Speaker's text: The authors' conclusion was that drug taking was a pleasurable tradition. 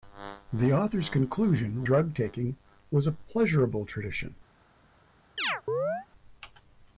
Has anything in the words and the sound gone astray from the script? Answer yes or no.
yes